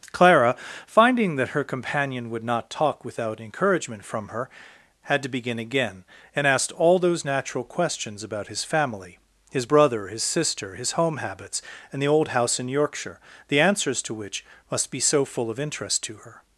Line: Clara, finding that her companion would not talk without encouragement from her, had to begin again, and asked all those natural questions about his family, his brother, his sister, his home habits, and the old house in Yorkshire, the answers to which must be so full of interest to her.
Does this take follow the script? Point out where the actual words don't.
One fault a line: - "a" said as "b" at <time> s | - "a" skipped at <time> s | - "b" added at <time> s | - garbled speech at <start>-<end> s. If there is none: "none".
none